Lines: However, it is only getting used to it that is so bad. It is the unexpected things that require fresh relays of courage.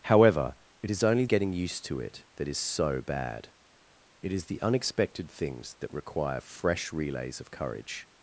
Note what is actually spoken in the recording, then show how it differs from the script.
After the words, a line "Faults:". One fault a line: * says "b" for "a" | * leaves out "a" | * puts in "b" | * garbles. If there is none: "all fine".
However, it is only getting used to it that is so bad. It is the unexpected things that require fresh relays of courage.
Faults:
all fine